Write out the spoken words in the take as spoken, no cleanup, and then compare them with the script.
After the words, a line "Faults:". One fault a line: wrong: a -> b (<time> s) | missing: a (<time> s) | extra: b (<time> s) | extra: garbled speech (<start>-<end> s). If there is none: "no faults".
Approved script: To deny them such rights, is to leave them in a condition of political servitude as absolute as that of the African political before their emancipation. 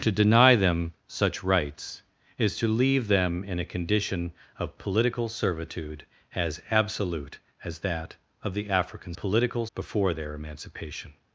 To deny them such rights, is to leave them in a condition of political servitude as absolute as that of the African political before their emancipation.
Faults:
no faults